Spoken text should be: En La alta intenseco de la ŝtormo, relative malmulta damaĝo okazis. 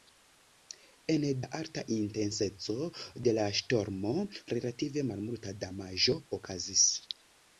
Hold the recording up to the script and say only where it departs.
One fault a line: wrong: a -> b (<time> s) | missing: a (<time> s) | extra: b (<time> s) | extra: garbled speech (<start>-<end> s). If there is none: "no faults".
no faults